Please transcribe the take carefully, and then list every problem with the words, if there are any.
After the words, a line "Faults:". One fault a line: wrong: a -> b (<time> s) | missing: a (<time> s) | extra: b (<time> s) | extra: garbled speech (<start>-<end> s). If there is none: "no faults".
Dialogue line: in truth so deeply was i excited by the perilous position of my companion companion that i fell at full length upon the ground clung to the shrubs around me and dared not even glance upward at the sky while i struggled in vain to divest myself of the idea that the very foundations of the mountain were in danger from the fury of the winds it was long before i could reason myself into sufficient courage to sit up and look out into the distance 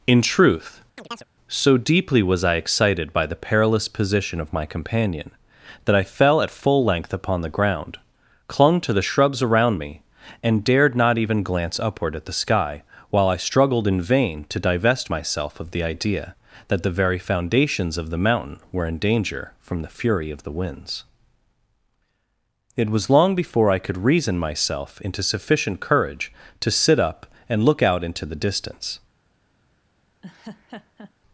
in truth so deeply was i excited by the perilous position of my companion that i fell at full length upon the ground clung to the shrubs around me and dared not even glance upward at the sky while i struggled in vain to divest myself of the idea that the very foundations of the mountain were in danger from the fury of the winds it was long before i could reason myself into sufficient courage to sit up and look out into the distance
Faults:
missing: companion (5.3 s)